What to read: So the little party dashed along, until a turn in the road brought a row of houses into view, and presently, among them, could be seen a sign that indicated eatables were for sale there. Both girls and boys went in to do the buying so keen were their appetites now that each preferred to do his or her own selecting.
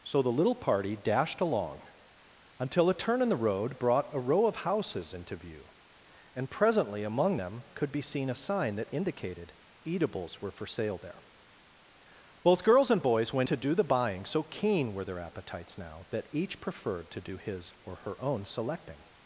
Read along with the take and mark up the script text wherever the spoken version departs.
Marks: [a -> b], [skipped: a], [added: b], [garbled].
So the little party dashed along, until a turn in the road brought a row of houses into view, and presently, among them, could be seen a sign that indicated eatables were for sale there. Both girls and boys went [skipped: in] to do the buying so keen were their appetites now that each preferred to do his or her own selecting.